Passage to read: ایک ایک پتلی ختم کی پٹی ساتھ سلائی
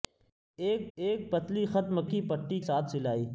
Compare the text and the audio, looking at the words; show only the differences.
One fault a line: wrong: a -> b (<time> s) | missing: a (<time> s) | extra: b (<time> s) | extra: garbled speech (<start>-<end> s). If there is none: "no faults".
no faults